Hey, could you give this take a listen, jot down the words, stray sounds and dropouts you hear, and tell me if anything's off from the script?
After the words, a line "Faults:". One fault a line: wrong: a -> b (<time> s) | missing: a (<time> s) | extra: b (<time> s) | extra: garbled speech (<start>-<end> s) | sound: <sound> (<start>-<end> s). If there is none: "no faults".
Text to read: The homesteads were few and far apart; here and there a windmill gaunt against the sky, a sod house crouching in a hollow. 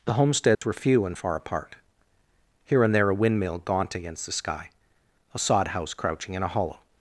The homesteads were few and far apart; here and there a windmill gaunt against the sky, a sod house crouching in a hollow.
Faults:
sound: dropout (0.6-0.6 s)